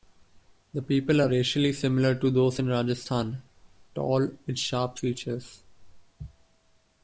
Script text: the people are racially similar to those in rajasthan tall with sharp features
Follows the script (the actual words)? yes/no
yes